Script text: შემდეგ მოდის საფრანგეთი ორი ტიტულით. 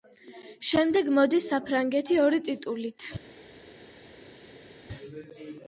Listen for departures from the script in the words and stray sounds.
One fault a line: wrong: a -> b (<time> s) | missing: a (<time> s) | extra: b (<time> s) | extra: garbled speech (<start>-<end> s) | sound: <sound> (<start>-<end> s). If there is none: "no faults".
no faults